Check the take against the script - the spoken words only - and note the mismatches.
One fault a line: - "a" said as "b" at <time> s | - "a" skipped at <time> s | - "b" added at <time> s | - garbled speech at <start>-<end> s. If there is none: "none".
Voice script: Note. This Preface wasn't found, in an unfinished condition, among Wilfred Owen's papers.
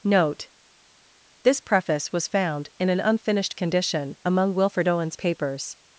- "wasn't" said as "was" at 2.1 s